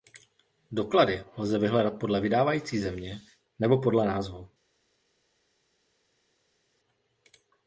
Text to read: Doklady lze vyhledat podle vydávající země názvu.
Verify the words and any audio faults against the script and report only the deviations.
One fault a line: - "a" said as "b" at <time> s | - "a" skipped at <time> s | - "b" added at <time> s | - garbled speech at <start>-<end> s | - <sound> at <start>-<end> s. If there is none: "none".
- "nebo podle" added at 3.6 s